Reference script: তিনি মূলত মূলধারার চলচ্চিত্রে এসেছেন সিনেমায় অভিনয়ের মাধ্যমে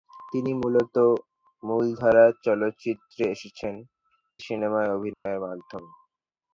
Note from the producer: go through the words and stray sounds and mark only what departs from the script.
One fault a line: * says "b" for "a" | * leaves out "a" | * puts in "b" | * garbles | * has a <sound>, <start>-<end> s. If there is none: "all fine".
* has a dropout, 5.1-5.3 s